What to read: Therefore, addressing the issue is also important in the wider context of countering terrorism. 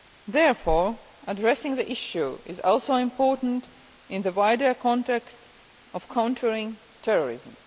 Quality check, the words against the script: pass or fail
pass